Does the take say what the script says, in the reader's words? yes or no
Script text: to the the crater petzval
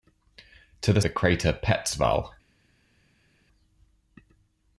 yes